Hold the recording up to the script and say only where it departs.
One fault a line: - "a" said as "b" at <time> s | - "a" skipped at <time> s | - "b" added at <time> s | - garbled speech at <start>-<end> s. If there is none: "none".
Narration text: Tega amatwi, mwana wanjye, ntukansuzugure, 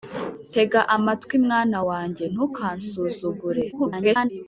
- garbled speech at 3.7-4.3 s